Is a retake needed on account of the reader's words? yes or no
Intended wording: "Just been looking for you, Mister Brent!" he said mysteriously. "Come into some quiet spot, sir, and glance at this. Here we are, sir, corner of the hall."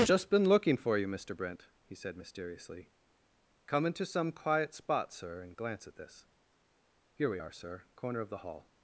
no